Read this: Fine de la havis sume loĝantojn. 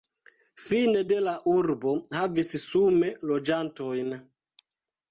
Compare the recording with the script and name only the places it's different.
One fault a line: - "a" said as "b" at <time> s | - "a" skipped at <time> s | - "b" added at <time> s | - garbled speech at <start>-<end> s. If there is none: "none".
- "urbo" added at 1.5 s